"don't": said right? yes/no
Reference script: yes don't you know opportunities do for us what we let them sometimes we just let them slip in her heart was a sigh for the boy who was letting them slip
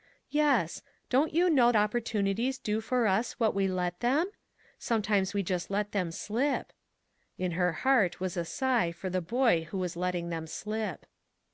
yes